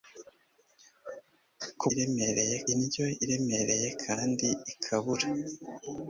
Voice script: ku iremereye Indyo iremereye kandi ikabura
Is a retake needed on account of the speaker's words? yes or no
no